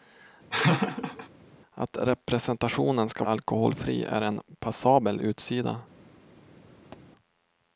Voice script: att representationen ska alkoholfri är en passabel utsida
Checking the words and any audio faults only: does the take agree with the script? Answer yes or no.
no